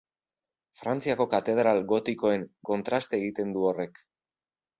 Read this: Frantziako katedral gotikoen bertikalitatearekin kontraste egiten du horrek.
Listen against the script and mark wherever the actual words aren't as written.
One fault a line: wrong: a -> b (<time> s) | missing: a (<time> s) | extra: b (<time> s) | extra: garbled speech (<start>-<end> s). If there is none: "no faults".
missing: bertikalitatearekin (2.5 s)